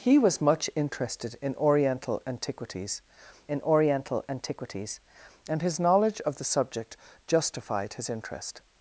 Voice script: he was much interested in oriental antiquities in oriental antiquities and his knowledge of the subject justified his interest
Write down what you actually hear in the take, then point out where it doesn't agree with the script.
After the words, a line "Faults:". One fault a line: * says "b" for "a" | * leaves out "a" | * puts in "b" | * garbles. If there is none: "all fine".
he was much interested in oriental antiquities in oriental antiquities and his knowledge of the subject justified his interest
Faults:
all fine